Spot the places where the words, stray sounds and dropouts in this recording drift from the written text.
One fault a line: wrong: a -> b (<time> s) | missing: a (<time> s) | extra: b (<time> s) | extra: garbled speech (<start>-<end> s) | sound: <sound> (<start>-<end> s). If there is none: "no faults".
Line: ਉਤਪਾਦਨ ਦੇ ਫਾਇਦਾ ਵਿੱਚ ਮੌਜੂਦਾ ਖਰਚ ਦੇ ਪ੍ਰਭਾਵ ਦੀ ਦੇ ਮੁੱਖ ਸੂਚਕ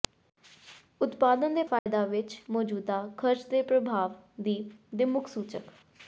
sound: dropout (1.8-1.9 s)